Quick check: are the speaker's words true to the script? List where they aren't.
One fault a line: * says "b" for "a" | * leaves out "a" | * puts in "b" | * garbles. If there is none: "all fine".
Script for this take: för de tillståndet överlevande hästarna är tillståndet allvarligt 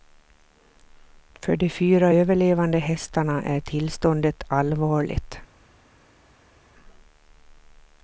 * says "fyra" for "tillståndet"